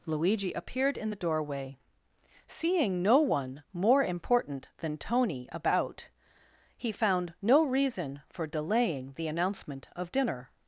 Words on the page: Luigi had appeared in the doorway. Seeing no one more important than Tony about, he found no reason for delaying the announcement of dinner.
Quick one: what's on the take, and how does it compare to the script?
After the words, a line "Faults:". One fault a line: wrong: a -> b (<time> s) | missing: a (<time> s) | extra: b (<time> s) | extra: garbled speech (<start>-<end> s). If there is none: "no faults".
Luigi appeared in the doorway. Seeing no one more important than Tony about, he found no reason for delaying the announcement of dinner.
Faults:
missing: had (0.5 s)